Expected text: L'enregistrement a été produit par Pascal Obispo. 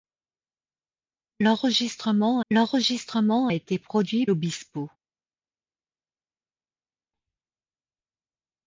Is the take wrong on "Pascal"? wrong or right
wrong